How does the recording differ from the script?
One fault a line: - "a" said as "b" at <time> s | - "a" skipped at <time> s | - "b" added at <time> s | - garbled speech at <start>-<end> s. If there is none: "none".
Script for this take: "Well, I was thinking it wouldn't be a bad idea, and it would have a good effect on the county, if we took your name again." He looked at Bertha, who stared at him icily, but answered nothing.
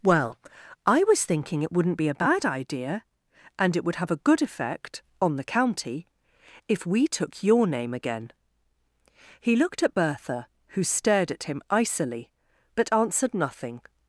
none